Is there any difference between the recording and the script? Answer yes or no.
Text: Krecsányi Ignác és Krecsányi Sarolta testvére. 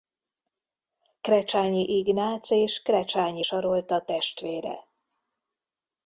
no